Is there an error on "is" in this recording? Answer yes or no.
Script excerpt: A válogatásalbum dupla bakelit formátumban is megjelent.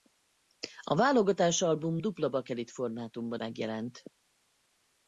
yes